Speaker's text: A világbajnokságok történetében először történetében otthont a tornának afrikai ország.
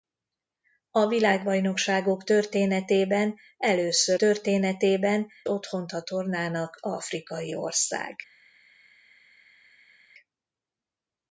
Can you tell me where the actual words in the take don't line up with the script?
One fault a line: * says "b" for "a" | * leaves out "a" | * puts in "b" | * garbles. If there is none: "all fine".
all fine